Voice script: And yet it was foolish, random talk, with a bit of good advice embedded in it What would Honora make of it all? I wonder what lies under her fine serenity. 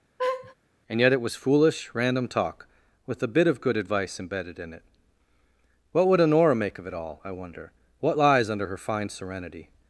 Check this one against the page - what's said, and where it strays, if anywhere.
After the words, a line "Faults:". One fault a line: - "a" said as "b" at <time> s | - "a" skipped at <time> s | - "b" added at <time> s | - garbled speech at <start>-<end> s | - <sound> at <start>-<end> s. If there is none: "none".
And yet it was foolish, random talk, with a bit of good advice embedded in it What would Honora make of it all? I wonder what lies under her fine serenity.
Faults:
- laugh at 0.2-0.6 s